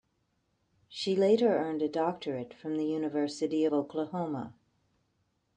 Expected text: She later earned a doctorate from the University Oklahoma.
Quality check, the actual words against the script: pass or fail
pass